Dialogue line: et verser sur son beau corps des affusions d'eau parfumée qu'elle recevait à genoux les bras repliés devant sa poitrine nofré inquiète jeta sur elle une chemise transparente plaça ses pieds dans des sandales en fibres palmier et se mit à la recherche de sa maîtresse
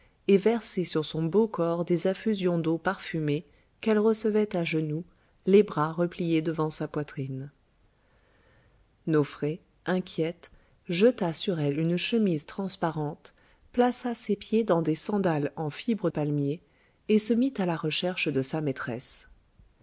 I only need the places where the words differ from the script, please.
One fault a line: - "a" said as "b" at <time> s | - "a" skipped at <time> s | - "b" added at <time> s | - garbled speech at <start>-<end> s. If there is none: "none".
none